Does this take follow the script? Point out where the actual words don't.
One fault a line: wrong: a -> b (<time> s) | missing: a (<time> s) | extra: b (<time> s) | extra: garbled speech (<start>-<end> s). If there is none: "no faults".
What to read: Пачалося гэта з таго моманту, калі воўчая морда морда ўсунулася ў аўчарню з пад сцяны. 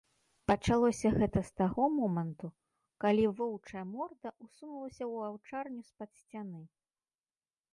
missing: морда (4.3 s)